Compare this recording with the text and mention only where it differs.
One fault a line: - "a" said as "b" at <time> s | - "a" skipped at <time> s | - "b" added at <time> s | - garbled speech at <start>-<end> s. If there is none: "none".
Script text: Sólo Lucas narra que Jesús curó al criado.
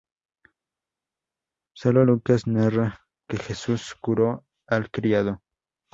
none